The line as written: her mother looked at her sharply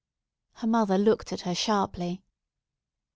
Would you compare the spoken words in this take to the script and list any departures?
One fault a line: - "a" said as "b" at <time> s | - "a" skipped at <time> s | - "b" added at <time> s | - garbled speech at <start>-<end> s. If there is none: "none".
none